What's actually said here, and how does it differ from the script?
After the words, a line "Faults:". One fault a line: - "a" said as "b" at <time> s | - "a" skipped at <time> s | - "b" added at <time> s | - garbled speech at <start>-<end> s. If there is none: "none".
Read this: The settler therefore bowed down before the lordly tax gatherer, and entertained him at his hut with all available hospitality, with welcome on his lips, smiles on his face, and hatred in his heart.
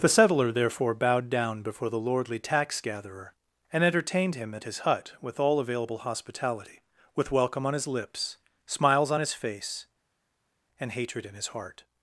The settler therefore bowed down before the lordly tax gatherer, and entertained him at his hut with all available hospitality, with welcome on his lips, smiles on his face, and hatred in his heart.
Faults:
none